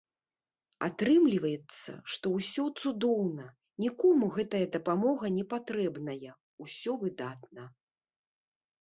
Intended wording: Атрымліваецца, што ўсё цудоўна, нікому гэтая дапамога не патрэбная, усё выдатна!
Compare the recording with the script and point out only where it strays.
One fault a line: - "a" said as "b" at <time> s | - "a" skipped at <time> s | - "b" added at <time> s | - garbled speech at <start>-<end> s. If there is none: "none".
none